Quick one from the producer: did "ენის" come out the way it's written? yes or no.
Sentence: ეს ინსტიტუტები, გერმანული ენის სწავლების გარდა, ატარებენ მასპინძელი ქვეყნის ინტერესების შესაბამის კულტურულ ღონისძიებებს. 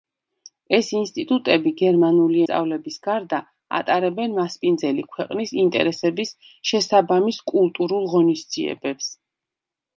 no